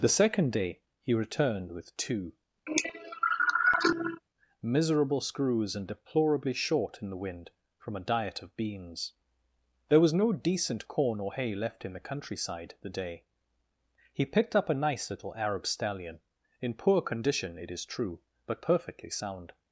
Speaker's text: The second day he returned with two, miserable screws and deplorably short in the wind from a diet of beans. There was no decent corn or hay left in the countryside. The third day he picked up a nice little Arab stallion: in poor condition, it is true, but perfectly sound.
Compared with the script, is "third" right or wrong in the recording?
wrong